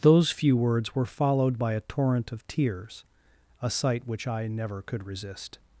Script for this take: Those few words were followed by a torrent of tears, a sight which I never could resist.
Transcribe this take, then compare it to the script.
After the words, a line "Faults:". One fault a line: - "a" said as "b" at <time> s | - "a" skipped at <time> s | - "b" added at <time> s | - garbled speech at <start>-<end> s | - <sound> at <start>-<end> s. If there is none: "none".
Those few words were followed by a torrent of tears, a sight which I never could resist.
Faults:
none